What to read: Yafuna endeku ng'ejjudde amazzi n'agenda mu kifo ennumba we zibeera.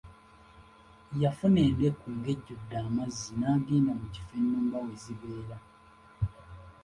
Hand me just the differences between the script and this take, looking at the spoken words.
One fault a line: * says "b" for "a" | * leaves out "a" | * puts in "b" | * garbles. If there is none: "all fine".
all fine